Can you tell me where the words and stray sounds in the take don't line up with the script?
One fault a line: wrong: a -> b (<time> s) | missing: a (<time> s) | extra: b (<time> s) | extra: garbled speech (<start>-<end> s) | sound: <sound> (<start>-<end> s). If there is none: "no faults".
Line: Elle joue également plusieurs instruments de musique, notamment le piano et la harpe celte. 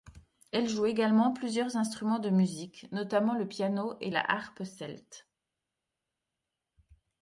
no faults